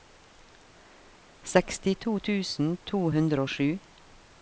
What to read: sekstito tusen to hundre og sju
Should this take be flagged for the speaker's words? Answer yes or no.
no